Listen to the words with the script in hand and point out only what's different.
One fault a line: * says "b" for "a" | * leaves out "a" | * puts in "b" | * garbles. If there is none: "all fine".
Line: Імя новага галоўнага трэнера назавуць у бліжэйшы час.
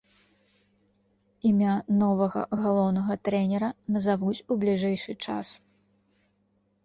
all fine